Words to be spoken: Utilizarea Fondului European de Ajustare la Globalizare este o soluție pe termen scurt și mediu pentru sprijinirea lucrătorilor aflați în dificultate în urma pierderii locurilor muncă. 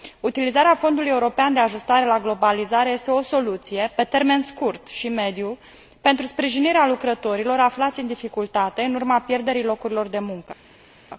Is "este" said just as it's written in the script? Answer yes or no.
yes